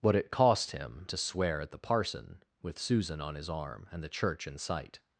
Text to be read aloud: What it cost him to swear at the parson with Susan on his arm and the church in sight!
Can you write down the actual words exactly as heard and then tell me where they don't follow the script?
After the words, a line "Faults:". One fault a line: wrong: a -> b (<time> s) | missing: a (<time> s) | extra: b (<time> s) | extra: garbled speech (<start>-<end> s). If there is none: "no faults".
What it cost him to swear at the parson with Susan on his arm and the church in sight!
Faults:
no faults